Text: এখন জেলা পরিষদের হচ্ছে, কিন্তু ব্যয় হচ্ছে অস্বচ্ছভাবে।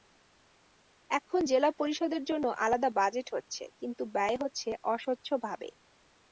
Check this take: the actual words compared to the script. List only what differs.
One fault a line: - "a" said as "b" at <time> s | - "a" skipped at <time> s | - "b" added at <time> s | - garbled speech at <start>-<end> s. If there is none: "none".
- "জন্য আলাদা বাজেট" added at 2.2 s